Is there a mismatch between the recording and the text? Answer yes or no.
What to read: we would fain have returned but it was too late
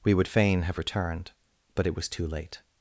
no